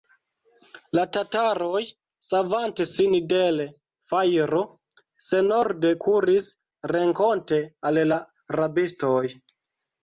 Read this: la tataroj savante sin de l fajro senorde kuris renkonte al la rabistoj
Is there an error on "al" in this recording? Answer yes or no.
no